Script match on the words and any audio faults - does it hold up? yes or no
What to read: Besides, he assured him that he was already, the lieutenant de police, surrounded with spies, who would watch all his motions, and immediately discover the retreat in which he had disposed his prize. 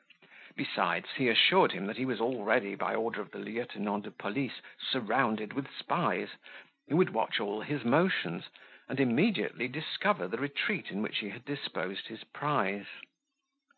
no